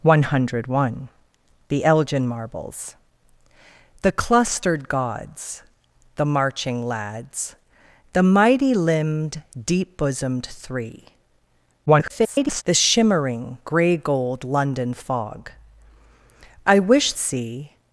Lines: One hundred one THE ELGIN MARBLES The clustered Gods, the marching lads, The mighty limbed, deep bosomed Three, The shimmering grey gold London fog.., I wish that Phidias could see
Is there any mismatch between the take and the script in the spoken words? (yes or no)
yes